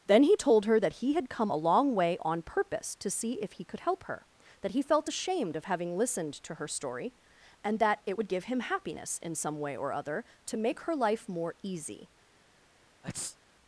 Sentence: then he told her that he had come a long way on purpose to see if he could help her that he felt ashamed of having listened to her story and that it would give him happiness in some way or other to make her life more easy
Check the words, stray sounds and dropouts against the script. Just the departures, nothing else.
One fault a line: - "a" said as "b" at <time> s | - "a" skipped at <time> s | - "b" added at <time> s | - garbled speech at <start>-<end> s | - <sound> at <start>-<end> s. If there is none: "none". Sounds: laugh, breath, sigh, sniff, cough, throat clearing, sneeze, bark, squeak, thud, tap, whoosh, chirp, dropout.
- sneeze at 13.0-13.4 s